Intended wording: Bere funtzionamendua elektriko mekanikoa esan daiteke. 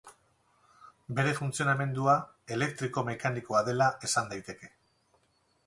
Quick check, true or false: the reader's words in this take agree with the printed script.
false